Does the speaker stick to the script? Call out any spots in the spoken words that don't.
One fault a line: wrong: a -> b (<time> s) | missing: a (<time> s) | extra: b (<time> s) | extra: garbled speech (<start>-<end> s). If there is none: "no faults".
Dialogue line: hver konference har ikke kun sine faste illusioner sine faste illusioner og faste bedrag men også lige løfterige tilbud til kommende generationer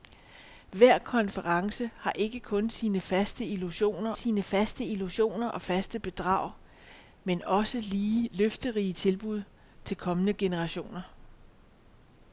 no faults